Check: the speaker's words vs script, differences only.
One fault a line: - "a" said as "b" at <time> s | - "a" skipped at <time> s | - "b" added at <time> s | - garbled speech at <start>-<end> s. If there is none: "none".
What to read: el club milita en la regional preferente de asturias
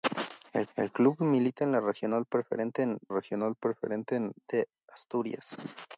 - "el" added at 0.7 s
- "regional preferente" added at 3.1 s